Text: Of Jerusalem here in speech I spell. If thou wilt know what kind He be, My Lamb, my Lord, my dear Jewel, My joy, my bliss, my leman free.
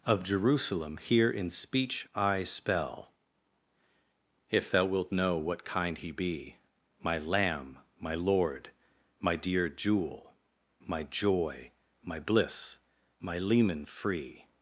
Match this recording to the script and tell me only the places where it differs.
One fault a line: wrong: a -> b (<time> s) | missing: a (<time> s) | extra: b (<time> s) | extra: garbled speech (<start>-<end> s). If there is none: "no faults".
no faults